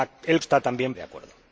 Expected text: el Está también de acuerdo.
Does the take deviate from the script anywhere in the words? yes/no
no